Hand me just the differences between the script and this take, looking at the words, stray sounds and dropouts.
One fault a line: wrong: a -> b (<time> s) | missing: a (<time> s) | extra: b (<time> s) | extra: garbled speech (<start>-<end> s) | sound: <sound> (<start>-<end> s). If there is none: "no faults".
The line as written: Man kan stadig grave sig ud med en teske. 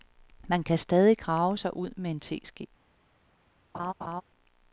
sound: laugh (3.7-4.2 s)